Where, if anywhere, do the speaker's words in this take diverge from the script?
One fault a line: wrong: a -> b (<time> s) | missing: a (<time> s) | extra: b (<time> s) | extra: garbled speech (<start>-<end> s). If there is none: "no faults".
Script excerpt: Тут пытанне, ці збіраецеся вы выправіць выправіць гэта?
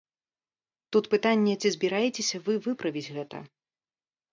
missing: выправіць (3.1 s)